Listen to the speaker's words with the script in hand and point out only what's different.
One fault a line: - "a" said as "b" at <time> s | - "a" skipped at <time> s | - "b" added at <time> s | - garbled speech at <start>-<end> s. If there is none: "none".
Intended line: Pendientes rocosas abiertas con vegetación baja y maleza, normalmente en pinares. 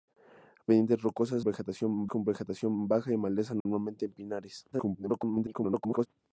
- "abiertas" said as "vegetación" at 1.4 s
- garbled speech at 4.7-6.1 s